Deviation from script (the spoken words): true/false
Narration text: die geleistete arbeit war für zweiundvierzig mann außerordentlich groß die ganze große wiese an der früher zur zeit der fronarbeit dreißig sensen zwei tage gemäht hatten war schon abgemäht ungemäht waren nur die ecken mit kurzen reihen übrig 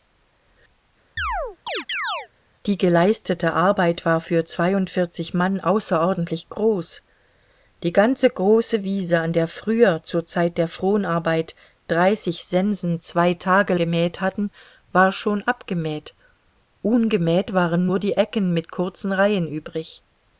false